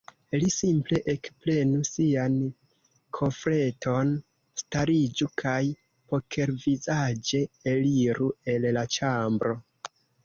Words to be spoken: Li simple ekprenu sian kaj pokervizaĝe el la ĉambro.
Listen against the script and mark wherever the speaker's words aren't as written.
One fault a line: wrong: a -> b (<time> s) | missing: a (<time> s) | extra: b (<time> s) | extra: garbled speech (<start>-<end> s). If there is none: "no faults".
extra: kofreton stariĝu (3.2 s)
extra: eliru (7.7 s)